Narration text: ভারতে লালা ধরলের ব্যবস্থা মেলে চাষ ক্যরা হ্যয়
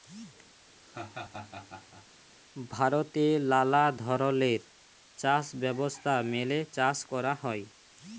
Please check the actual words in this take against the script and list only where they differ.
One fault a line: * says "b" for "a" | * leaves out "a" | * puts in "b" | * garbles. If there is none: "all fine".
* puts in "চাষ"